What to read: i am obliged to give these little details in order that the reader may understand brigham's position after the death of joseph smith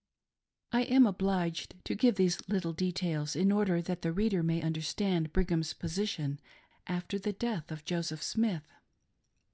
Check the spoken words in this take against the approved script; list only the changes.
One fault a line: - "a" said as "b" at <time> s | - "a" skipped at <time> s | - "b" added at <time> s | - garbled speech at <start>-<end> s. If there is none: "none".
none